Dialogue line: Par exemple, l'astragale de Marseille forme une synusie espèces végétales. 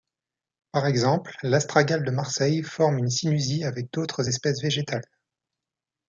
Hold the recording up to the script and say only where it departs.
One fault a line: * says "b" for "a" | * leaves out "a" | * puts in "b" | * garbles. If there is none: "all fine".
* puts in "avec d'autres"